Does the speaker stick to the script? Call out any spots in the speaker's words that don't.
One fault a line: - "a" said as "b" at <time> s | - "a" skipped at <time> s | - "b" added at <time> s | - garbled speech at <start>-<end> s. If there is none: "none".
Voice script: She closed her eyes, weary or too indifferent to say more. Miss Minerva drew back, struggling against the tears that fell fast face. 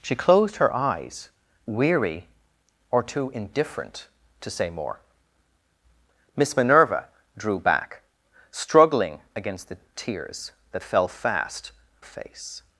none